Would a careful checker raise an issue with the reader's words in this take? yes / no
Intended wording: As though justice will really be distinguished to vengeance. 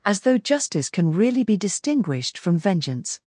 yes